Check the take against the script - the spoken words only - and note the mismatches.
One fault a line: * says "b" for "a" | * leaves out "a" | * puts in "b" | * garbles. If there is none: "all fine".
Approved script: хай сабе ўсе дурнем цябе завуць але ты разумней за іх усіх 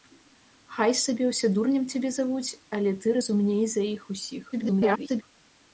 * garbles